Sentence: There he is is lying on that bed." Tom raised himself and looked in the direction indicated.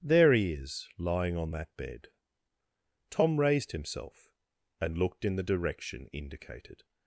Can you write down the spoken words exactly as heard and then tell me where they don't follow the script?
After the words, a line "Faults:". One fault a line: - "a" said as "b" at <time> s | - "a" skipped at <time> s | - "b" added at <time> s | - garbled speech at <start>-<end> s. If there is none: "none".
There he is lying on that bed." Tom raised himself and looked in the direction indicated.
Faults:
- "is" skipped at 0.9 s